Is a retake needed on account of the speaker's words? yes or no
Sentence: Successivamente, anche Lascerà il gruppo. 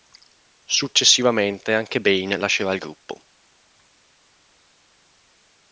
yes